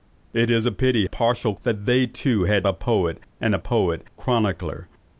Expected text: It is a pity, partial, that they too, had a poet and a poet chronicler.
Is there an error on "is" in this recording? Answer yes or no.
no